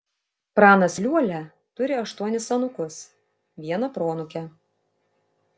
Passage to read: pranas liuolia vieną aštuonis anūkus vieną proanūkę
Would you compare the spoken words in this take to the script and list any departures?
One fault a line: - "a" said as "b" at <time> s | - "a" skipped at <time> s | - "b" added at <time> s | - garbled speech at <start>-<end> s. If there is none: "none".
- "vieną" said as "turi" at 1.8 s